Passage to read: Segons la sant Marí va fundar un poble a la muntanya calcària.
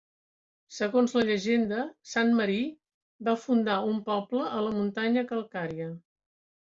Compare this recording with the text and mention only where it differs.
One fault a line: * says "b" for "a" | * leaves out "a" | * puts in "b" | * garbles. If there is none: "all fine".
* puts in "llegenda"